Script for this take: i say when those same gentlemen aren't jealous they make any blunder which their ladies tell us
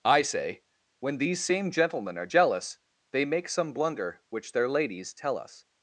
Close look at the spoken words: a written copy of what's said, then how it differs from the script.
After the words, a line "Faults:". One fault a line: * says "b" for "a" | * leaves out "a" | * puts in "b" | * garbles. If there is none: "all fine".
i say when these same gentlemen are jealous they make some blunder which their ladies tell us
Faults:
* says "these" for "those"
* says "are" for "aren't"
* says "some" for "any"